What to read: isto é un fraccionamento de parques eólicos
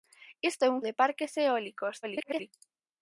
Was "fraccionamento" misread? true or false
true